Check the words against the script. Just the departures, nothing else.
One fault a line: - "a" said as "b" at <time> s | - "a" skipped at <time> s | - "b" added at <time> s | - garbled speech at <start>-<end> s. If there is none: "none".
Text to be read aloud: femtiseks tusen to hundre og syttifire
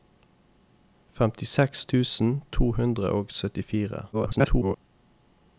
- garbled speech at 4.1-4.8 s